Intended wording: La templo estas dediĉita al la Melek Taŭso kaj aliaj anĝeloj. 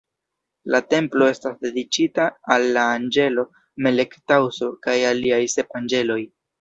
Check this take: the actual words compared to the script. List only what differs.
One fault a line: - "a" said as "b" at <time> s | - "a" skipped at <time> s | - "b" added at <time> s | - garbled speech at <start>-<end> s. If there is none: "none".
- "anĝelo" added at 3.0 s
- "sep" added at 5.6 s